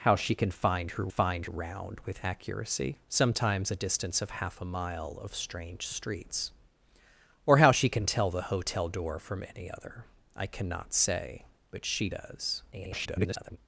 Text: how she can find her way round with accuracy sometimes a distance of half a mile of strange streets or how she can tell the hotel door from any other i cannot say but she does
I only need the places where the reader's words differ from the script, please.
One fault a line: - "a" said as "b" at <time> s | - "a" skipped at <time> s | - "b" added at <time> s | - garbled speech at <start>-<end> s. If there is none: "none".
- "way" said as "find" at 1.1 s
- garbled speech at 12.7-13.6 s